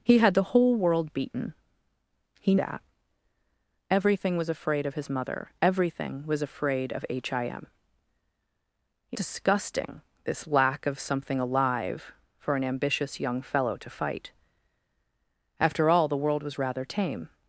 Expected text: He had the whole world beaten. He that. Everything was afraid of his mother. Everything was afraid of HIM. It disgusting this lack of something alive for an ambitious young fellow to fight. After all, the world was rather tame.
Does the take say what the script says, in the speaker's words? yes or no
yes